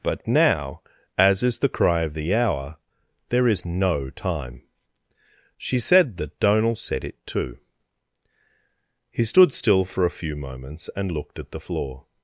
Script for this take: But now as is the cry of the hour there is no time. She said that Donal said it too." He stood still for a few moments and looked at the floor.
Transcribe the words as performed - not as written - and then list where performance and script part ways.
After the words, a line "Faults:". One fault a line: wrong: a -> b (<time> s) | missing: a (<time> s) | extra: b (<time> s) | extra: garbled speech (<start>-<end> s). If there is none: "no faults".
But now as is the cry of the hour there is no time. She said that Donal said it too." He stood still for a few moments and looked at the floor.
Faults:
no faults